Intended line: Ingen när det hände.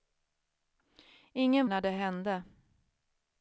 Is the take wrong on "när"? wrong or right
right